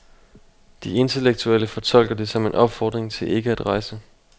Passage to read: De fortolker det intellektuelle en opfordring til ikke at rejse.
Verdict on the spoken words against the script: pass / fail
fail